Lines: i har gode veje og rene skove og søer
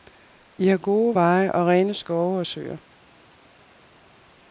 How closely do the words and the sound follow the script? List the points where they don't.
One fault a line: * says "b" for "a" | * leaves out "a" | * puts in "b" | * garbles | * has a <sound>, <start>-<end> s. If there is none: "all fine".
all fine